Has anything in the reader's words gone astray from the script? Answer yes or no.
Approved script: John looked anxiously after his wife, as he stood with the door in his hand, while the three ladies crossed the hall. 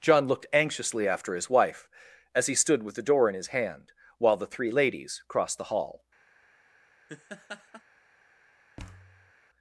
no